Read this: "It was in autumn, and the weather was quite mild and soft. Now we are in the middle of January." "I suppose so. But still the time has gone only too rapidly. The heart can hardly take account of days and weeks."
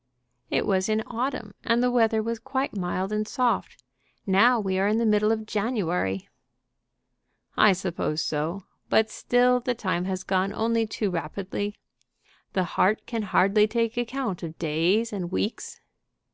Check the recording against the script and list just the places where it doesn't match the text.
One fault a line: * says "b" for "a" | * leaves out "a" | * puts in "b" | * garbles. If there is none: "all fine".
all fine